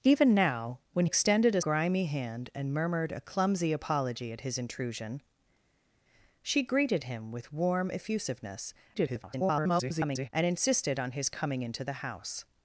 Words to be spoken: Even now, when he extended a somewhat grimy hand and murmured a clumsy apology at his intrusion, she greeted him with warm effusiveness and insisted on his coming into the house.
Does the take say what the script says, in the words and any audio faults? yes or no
no